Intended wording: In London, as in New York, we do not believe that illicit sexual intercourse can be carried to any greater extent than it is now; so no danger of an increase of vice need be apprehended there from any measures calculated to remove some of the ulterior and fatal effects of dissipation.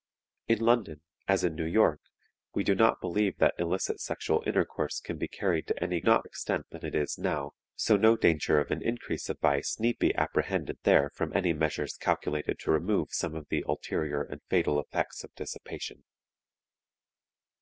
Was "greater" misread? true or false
true